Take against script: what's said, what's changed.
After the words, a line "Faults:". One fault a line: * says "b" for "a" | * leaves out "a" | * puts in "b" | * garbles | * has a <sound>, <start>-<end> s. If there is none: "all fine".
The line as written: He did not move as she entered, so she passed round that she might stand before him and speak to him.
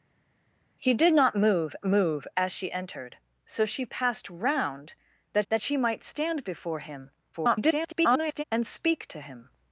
He did not move move as she entered, so she passed round that that she might stand before him [garbled] and speak to him.
Faults:
* puts in "move"
* puts in "that"
* garbles